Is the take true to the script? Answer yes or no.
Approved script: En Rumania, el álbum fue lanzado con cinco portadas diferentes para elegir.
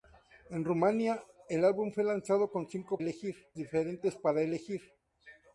no